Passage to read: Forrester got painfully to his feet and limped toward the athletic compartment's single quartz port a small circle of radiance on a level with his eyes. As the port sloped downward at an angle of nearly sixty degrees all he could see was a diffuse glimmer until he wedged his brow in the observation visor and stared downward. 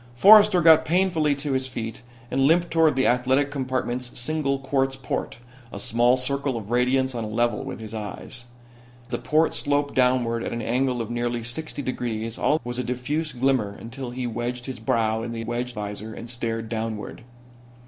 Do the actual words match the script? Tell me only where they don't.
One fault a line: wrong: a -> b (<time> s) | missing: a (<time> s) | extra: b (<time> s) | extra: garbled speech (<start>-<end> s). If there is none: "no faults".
missing: As (8.4 s)
missing: he could see (12.6 s)
wrong: observation -> wedged (15.4 s)